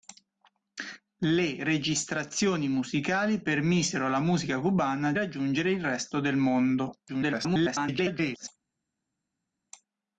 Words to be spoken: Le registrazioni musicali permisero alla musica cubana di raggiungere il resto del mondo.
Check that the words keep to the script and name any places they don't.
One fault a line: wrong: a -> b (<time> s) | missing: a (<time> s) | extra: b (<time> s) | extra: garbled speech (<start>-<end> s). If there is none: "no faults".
missing: di (5.1 s)
extra: garbled speech (7.1-8.5 s)